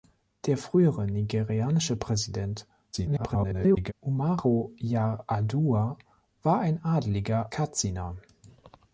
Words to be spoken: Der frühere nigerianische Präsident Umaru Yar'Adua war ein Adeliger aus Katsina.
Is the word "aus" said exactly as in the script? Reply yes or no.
no